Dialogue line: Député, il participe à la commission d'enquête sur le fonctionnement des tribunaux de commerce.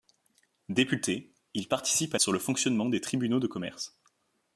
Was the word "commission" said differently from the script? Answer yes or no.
yes